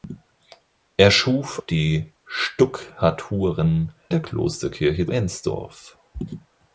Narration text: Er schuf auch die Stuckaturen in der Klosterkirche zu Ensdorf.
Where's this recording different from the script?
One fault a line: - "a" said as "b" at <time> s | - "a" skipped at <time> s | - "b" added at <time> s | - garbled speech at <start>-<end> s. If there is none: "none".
- "auch" skipped at 1.6 s
- "in" skipped at 3.9 s
- "zu" skipped at 5.1 s